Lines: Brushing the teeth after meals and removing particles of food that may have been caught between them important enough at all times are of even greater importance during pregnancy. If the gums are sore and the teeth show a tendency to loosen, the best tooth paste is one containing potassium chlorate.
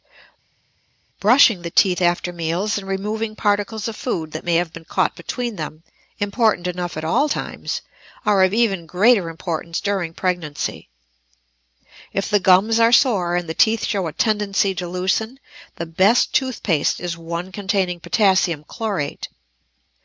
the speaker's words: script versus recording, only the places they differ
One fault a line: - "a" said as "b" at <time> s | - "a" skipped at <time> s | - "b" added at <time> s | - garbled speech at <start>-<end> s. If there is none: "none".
none